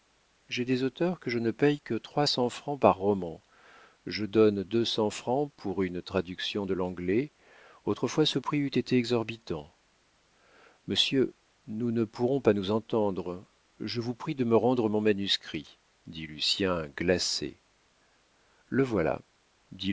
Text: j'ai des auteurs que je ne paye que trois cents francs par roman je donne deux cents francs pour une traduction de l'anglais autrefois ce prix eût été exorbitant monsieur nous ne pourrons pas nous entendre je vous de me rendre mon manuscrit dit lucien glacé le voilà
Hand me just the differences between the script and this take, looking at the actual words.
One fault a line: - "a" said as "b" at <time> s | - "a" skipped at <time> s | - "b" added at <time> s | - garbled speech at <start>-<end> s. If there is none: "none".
- "prie" added at 14.1 s